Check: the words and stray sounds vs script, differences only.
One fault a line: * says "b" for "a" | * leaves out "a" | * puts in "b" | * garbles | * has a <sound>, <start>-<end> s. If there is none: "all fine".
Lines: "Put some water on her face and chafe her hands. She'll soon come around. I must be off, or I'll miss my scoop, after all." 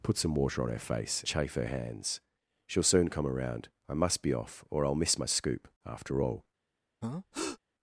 * leaves out "and"
* has a breath, 7.0-7.6 s